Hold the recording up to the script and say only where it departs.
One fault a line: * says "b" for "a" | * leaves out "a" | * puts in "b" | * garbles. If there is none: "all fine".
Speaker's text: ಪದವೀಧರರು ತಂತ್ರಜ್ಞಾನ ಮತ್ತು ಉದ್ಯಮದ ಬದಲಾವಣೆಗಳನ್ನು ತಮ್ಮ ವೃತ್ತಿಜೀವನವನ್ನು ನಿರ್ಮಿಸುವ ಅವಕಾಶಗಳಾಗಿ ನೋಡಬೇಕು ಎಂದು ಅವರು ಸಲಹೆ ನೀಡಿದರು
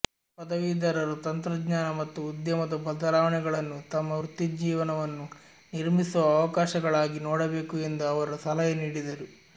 all fine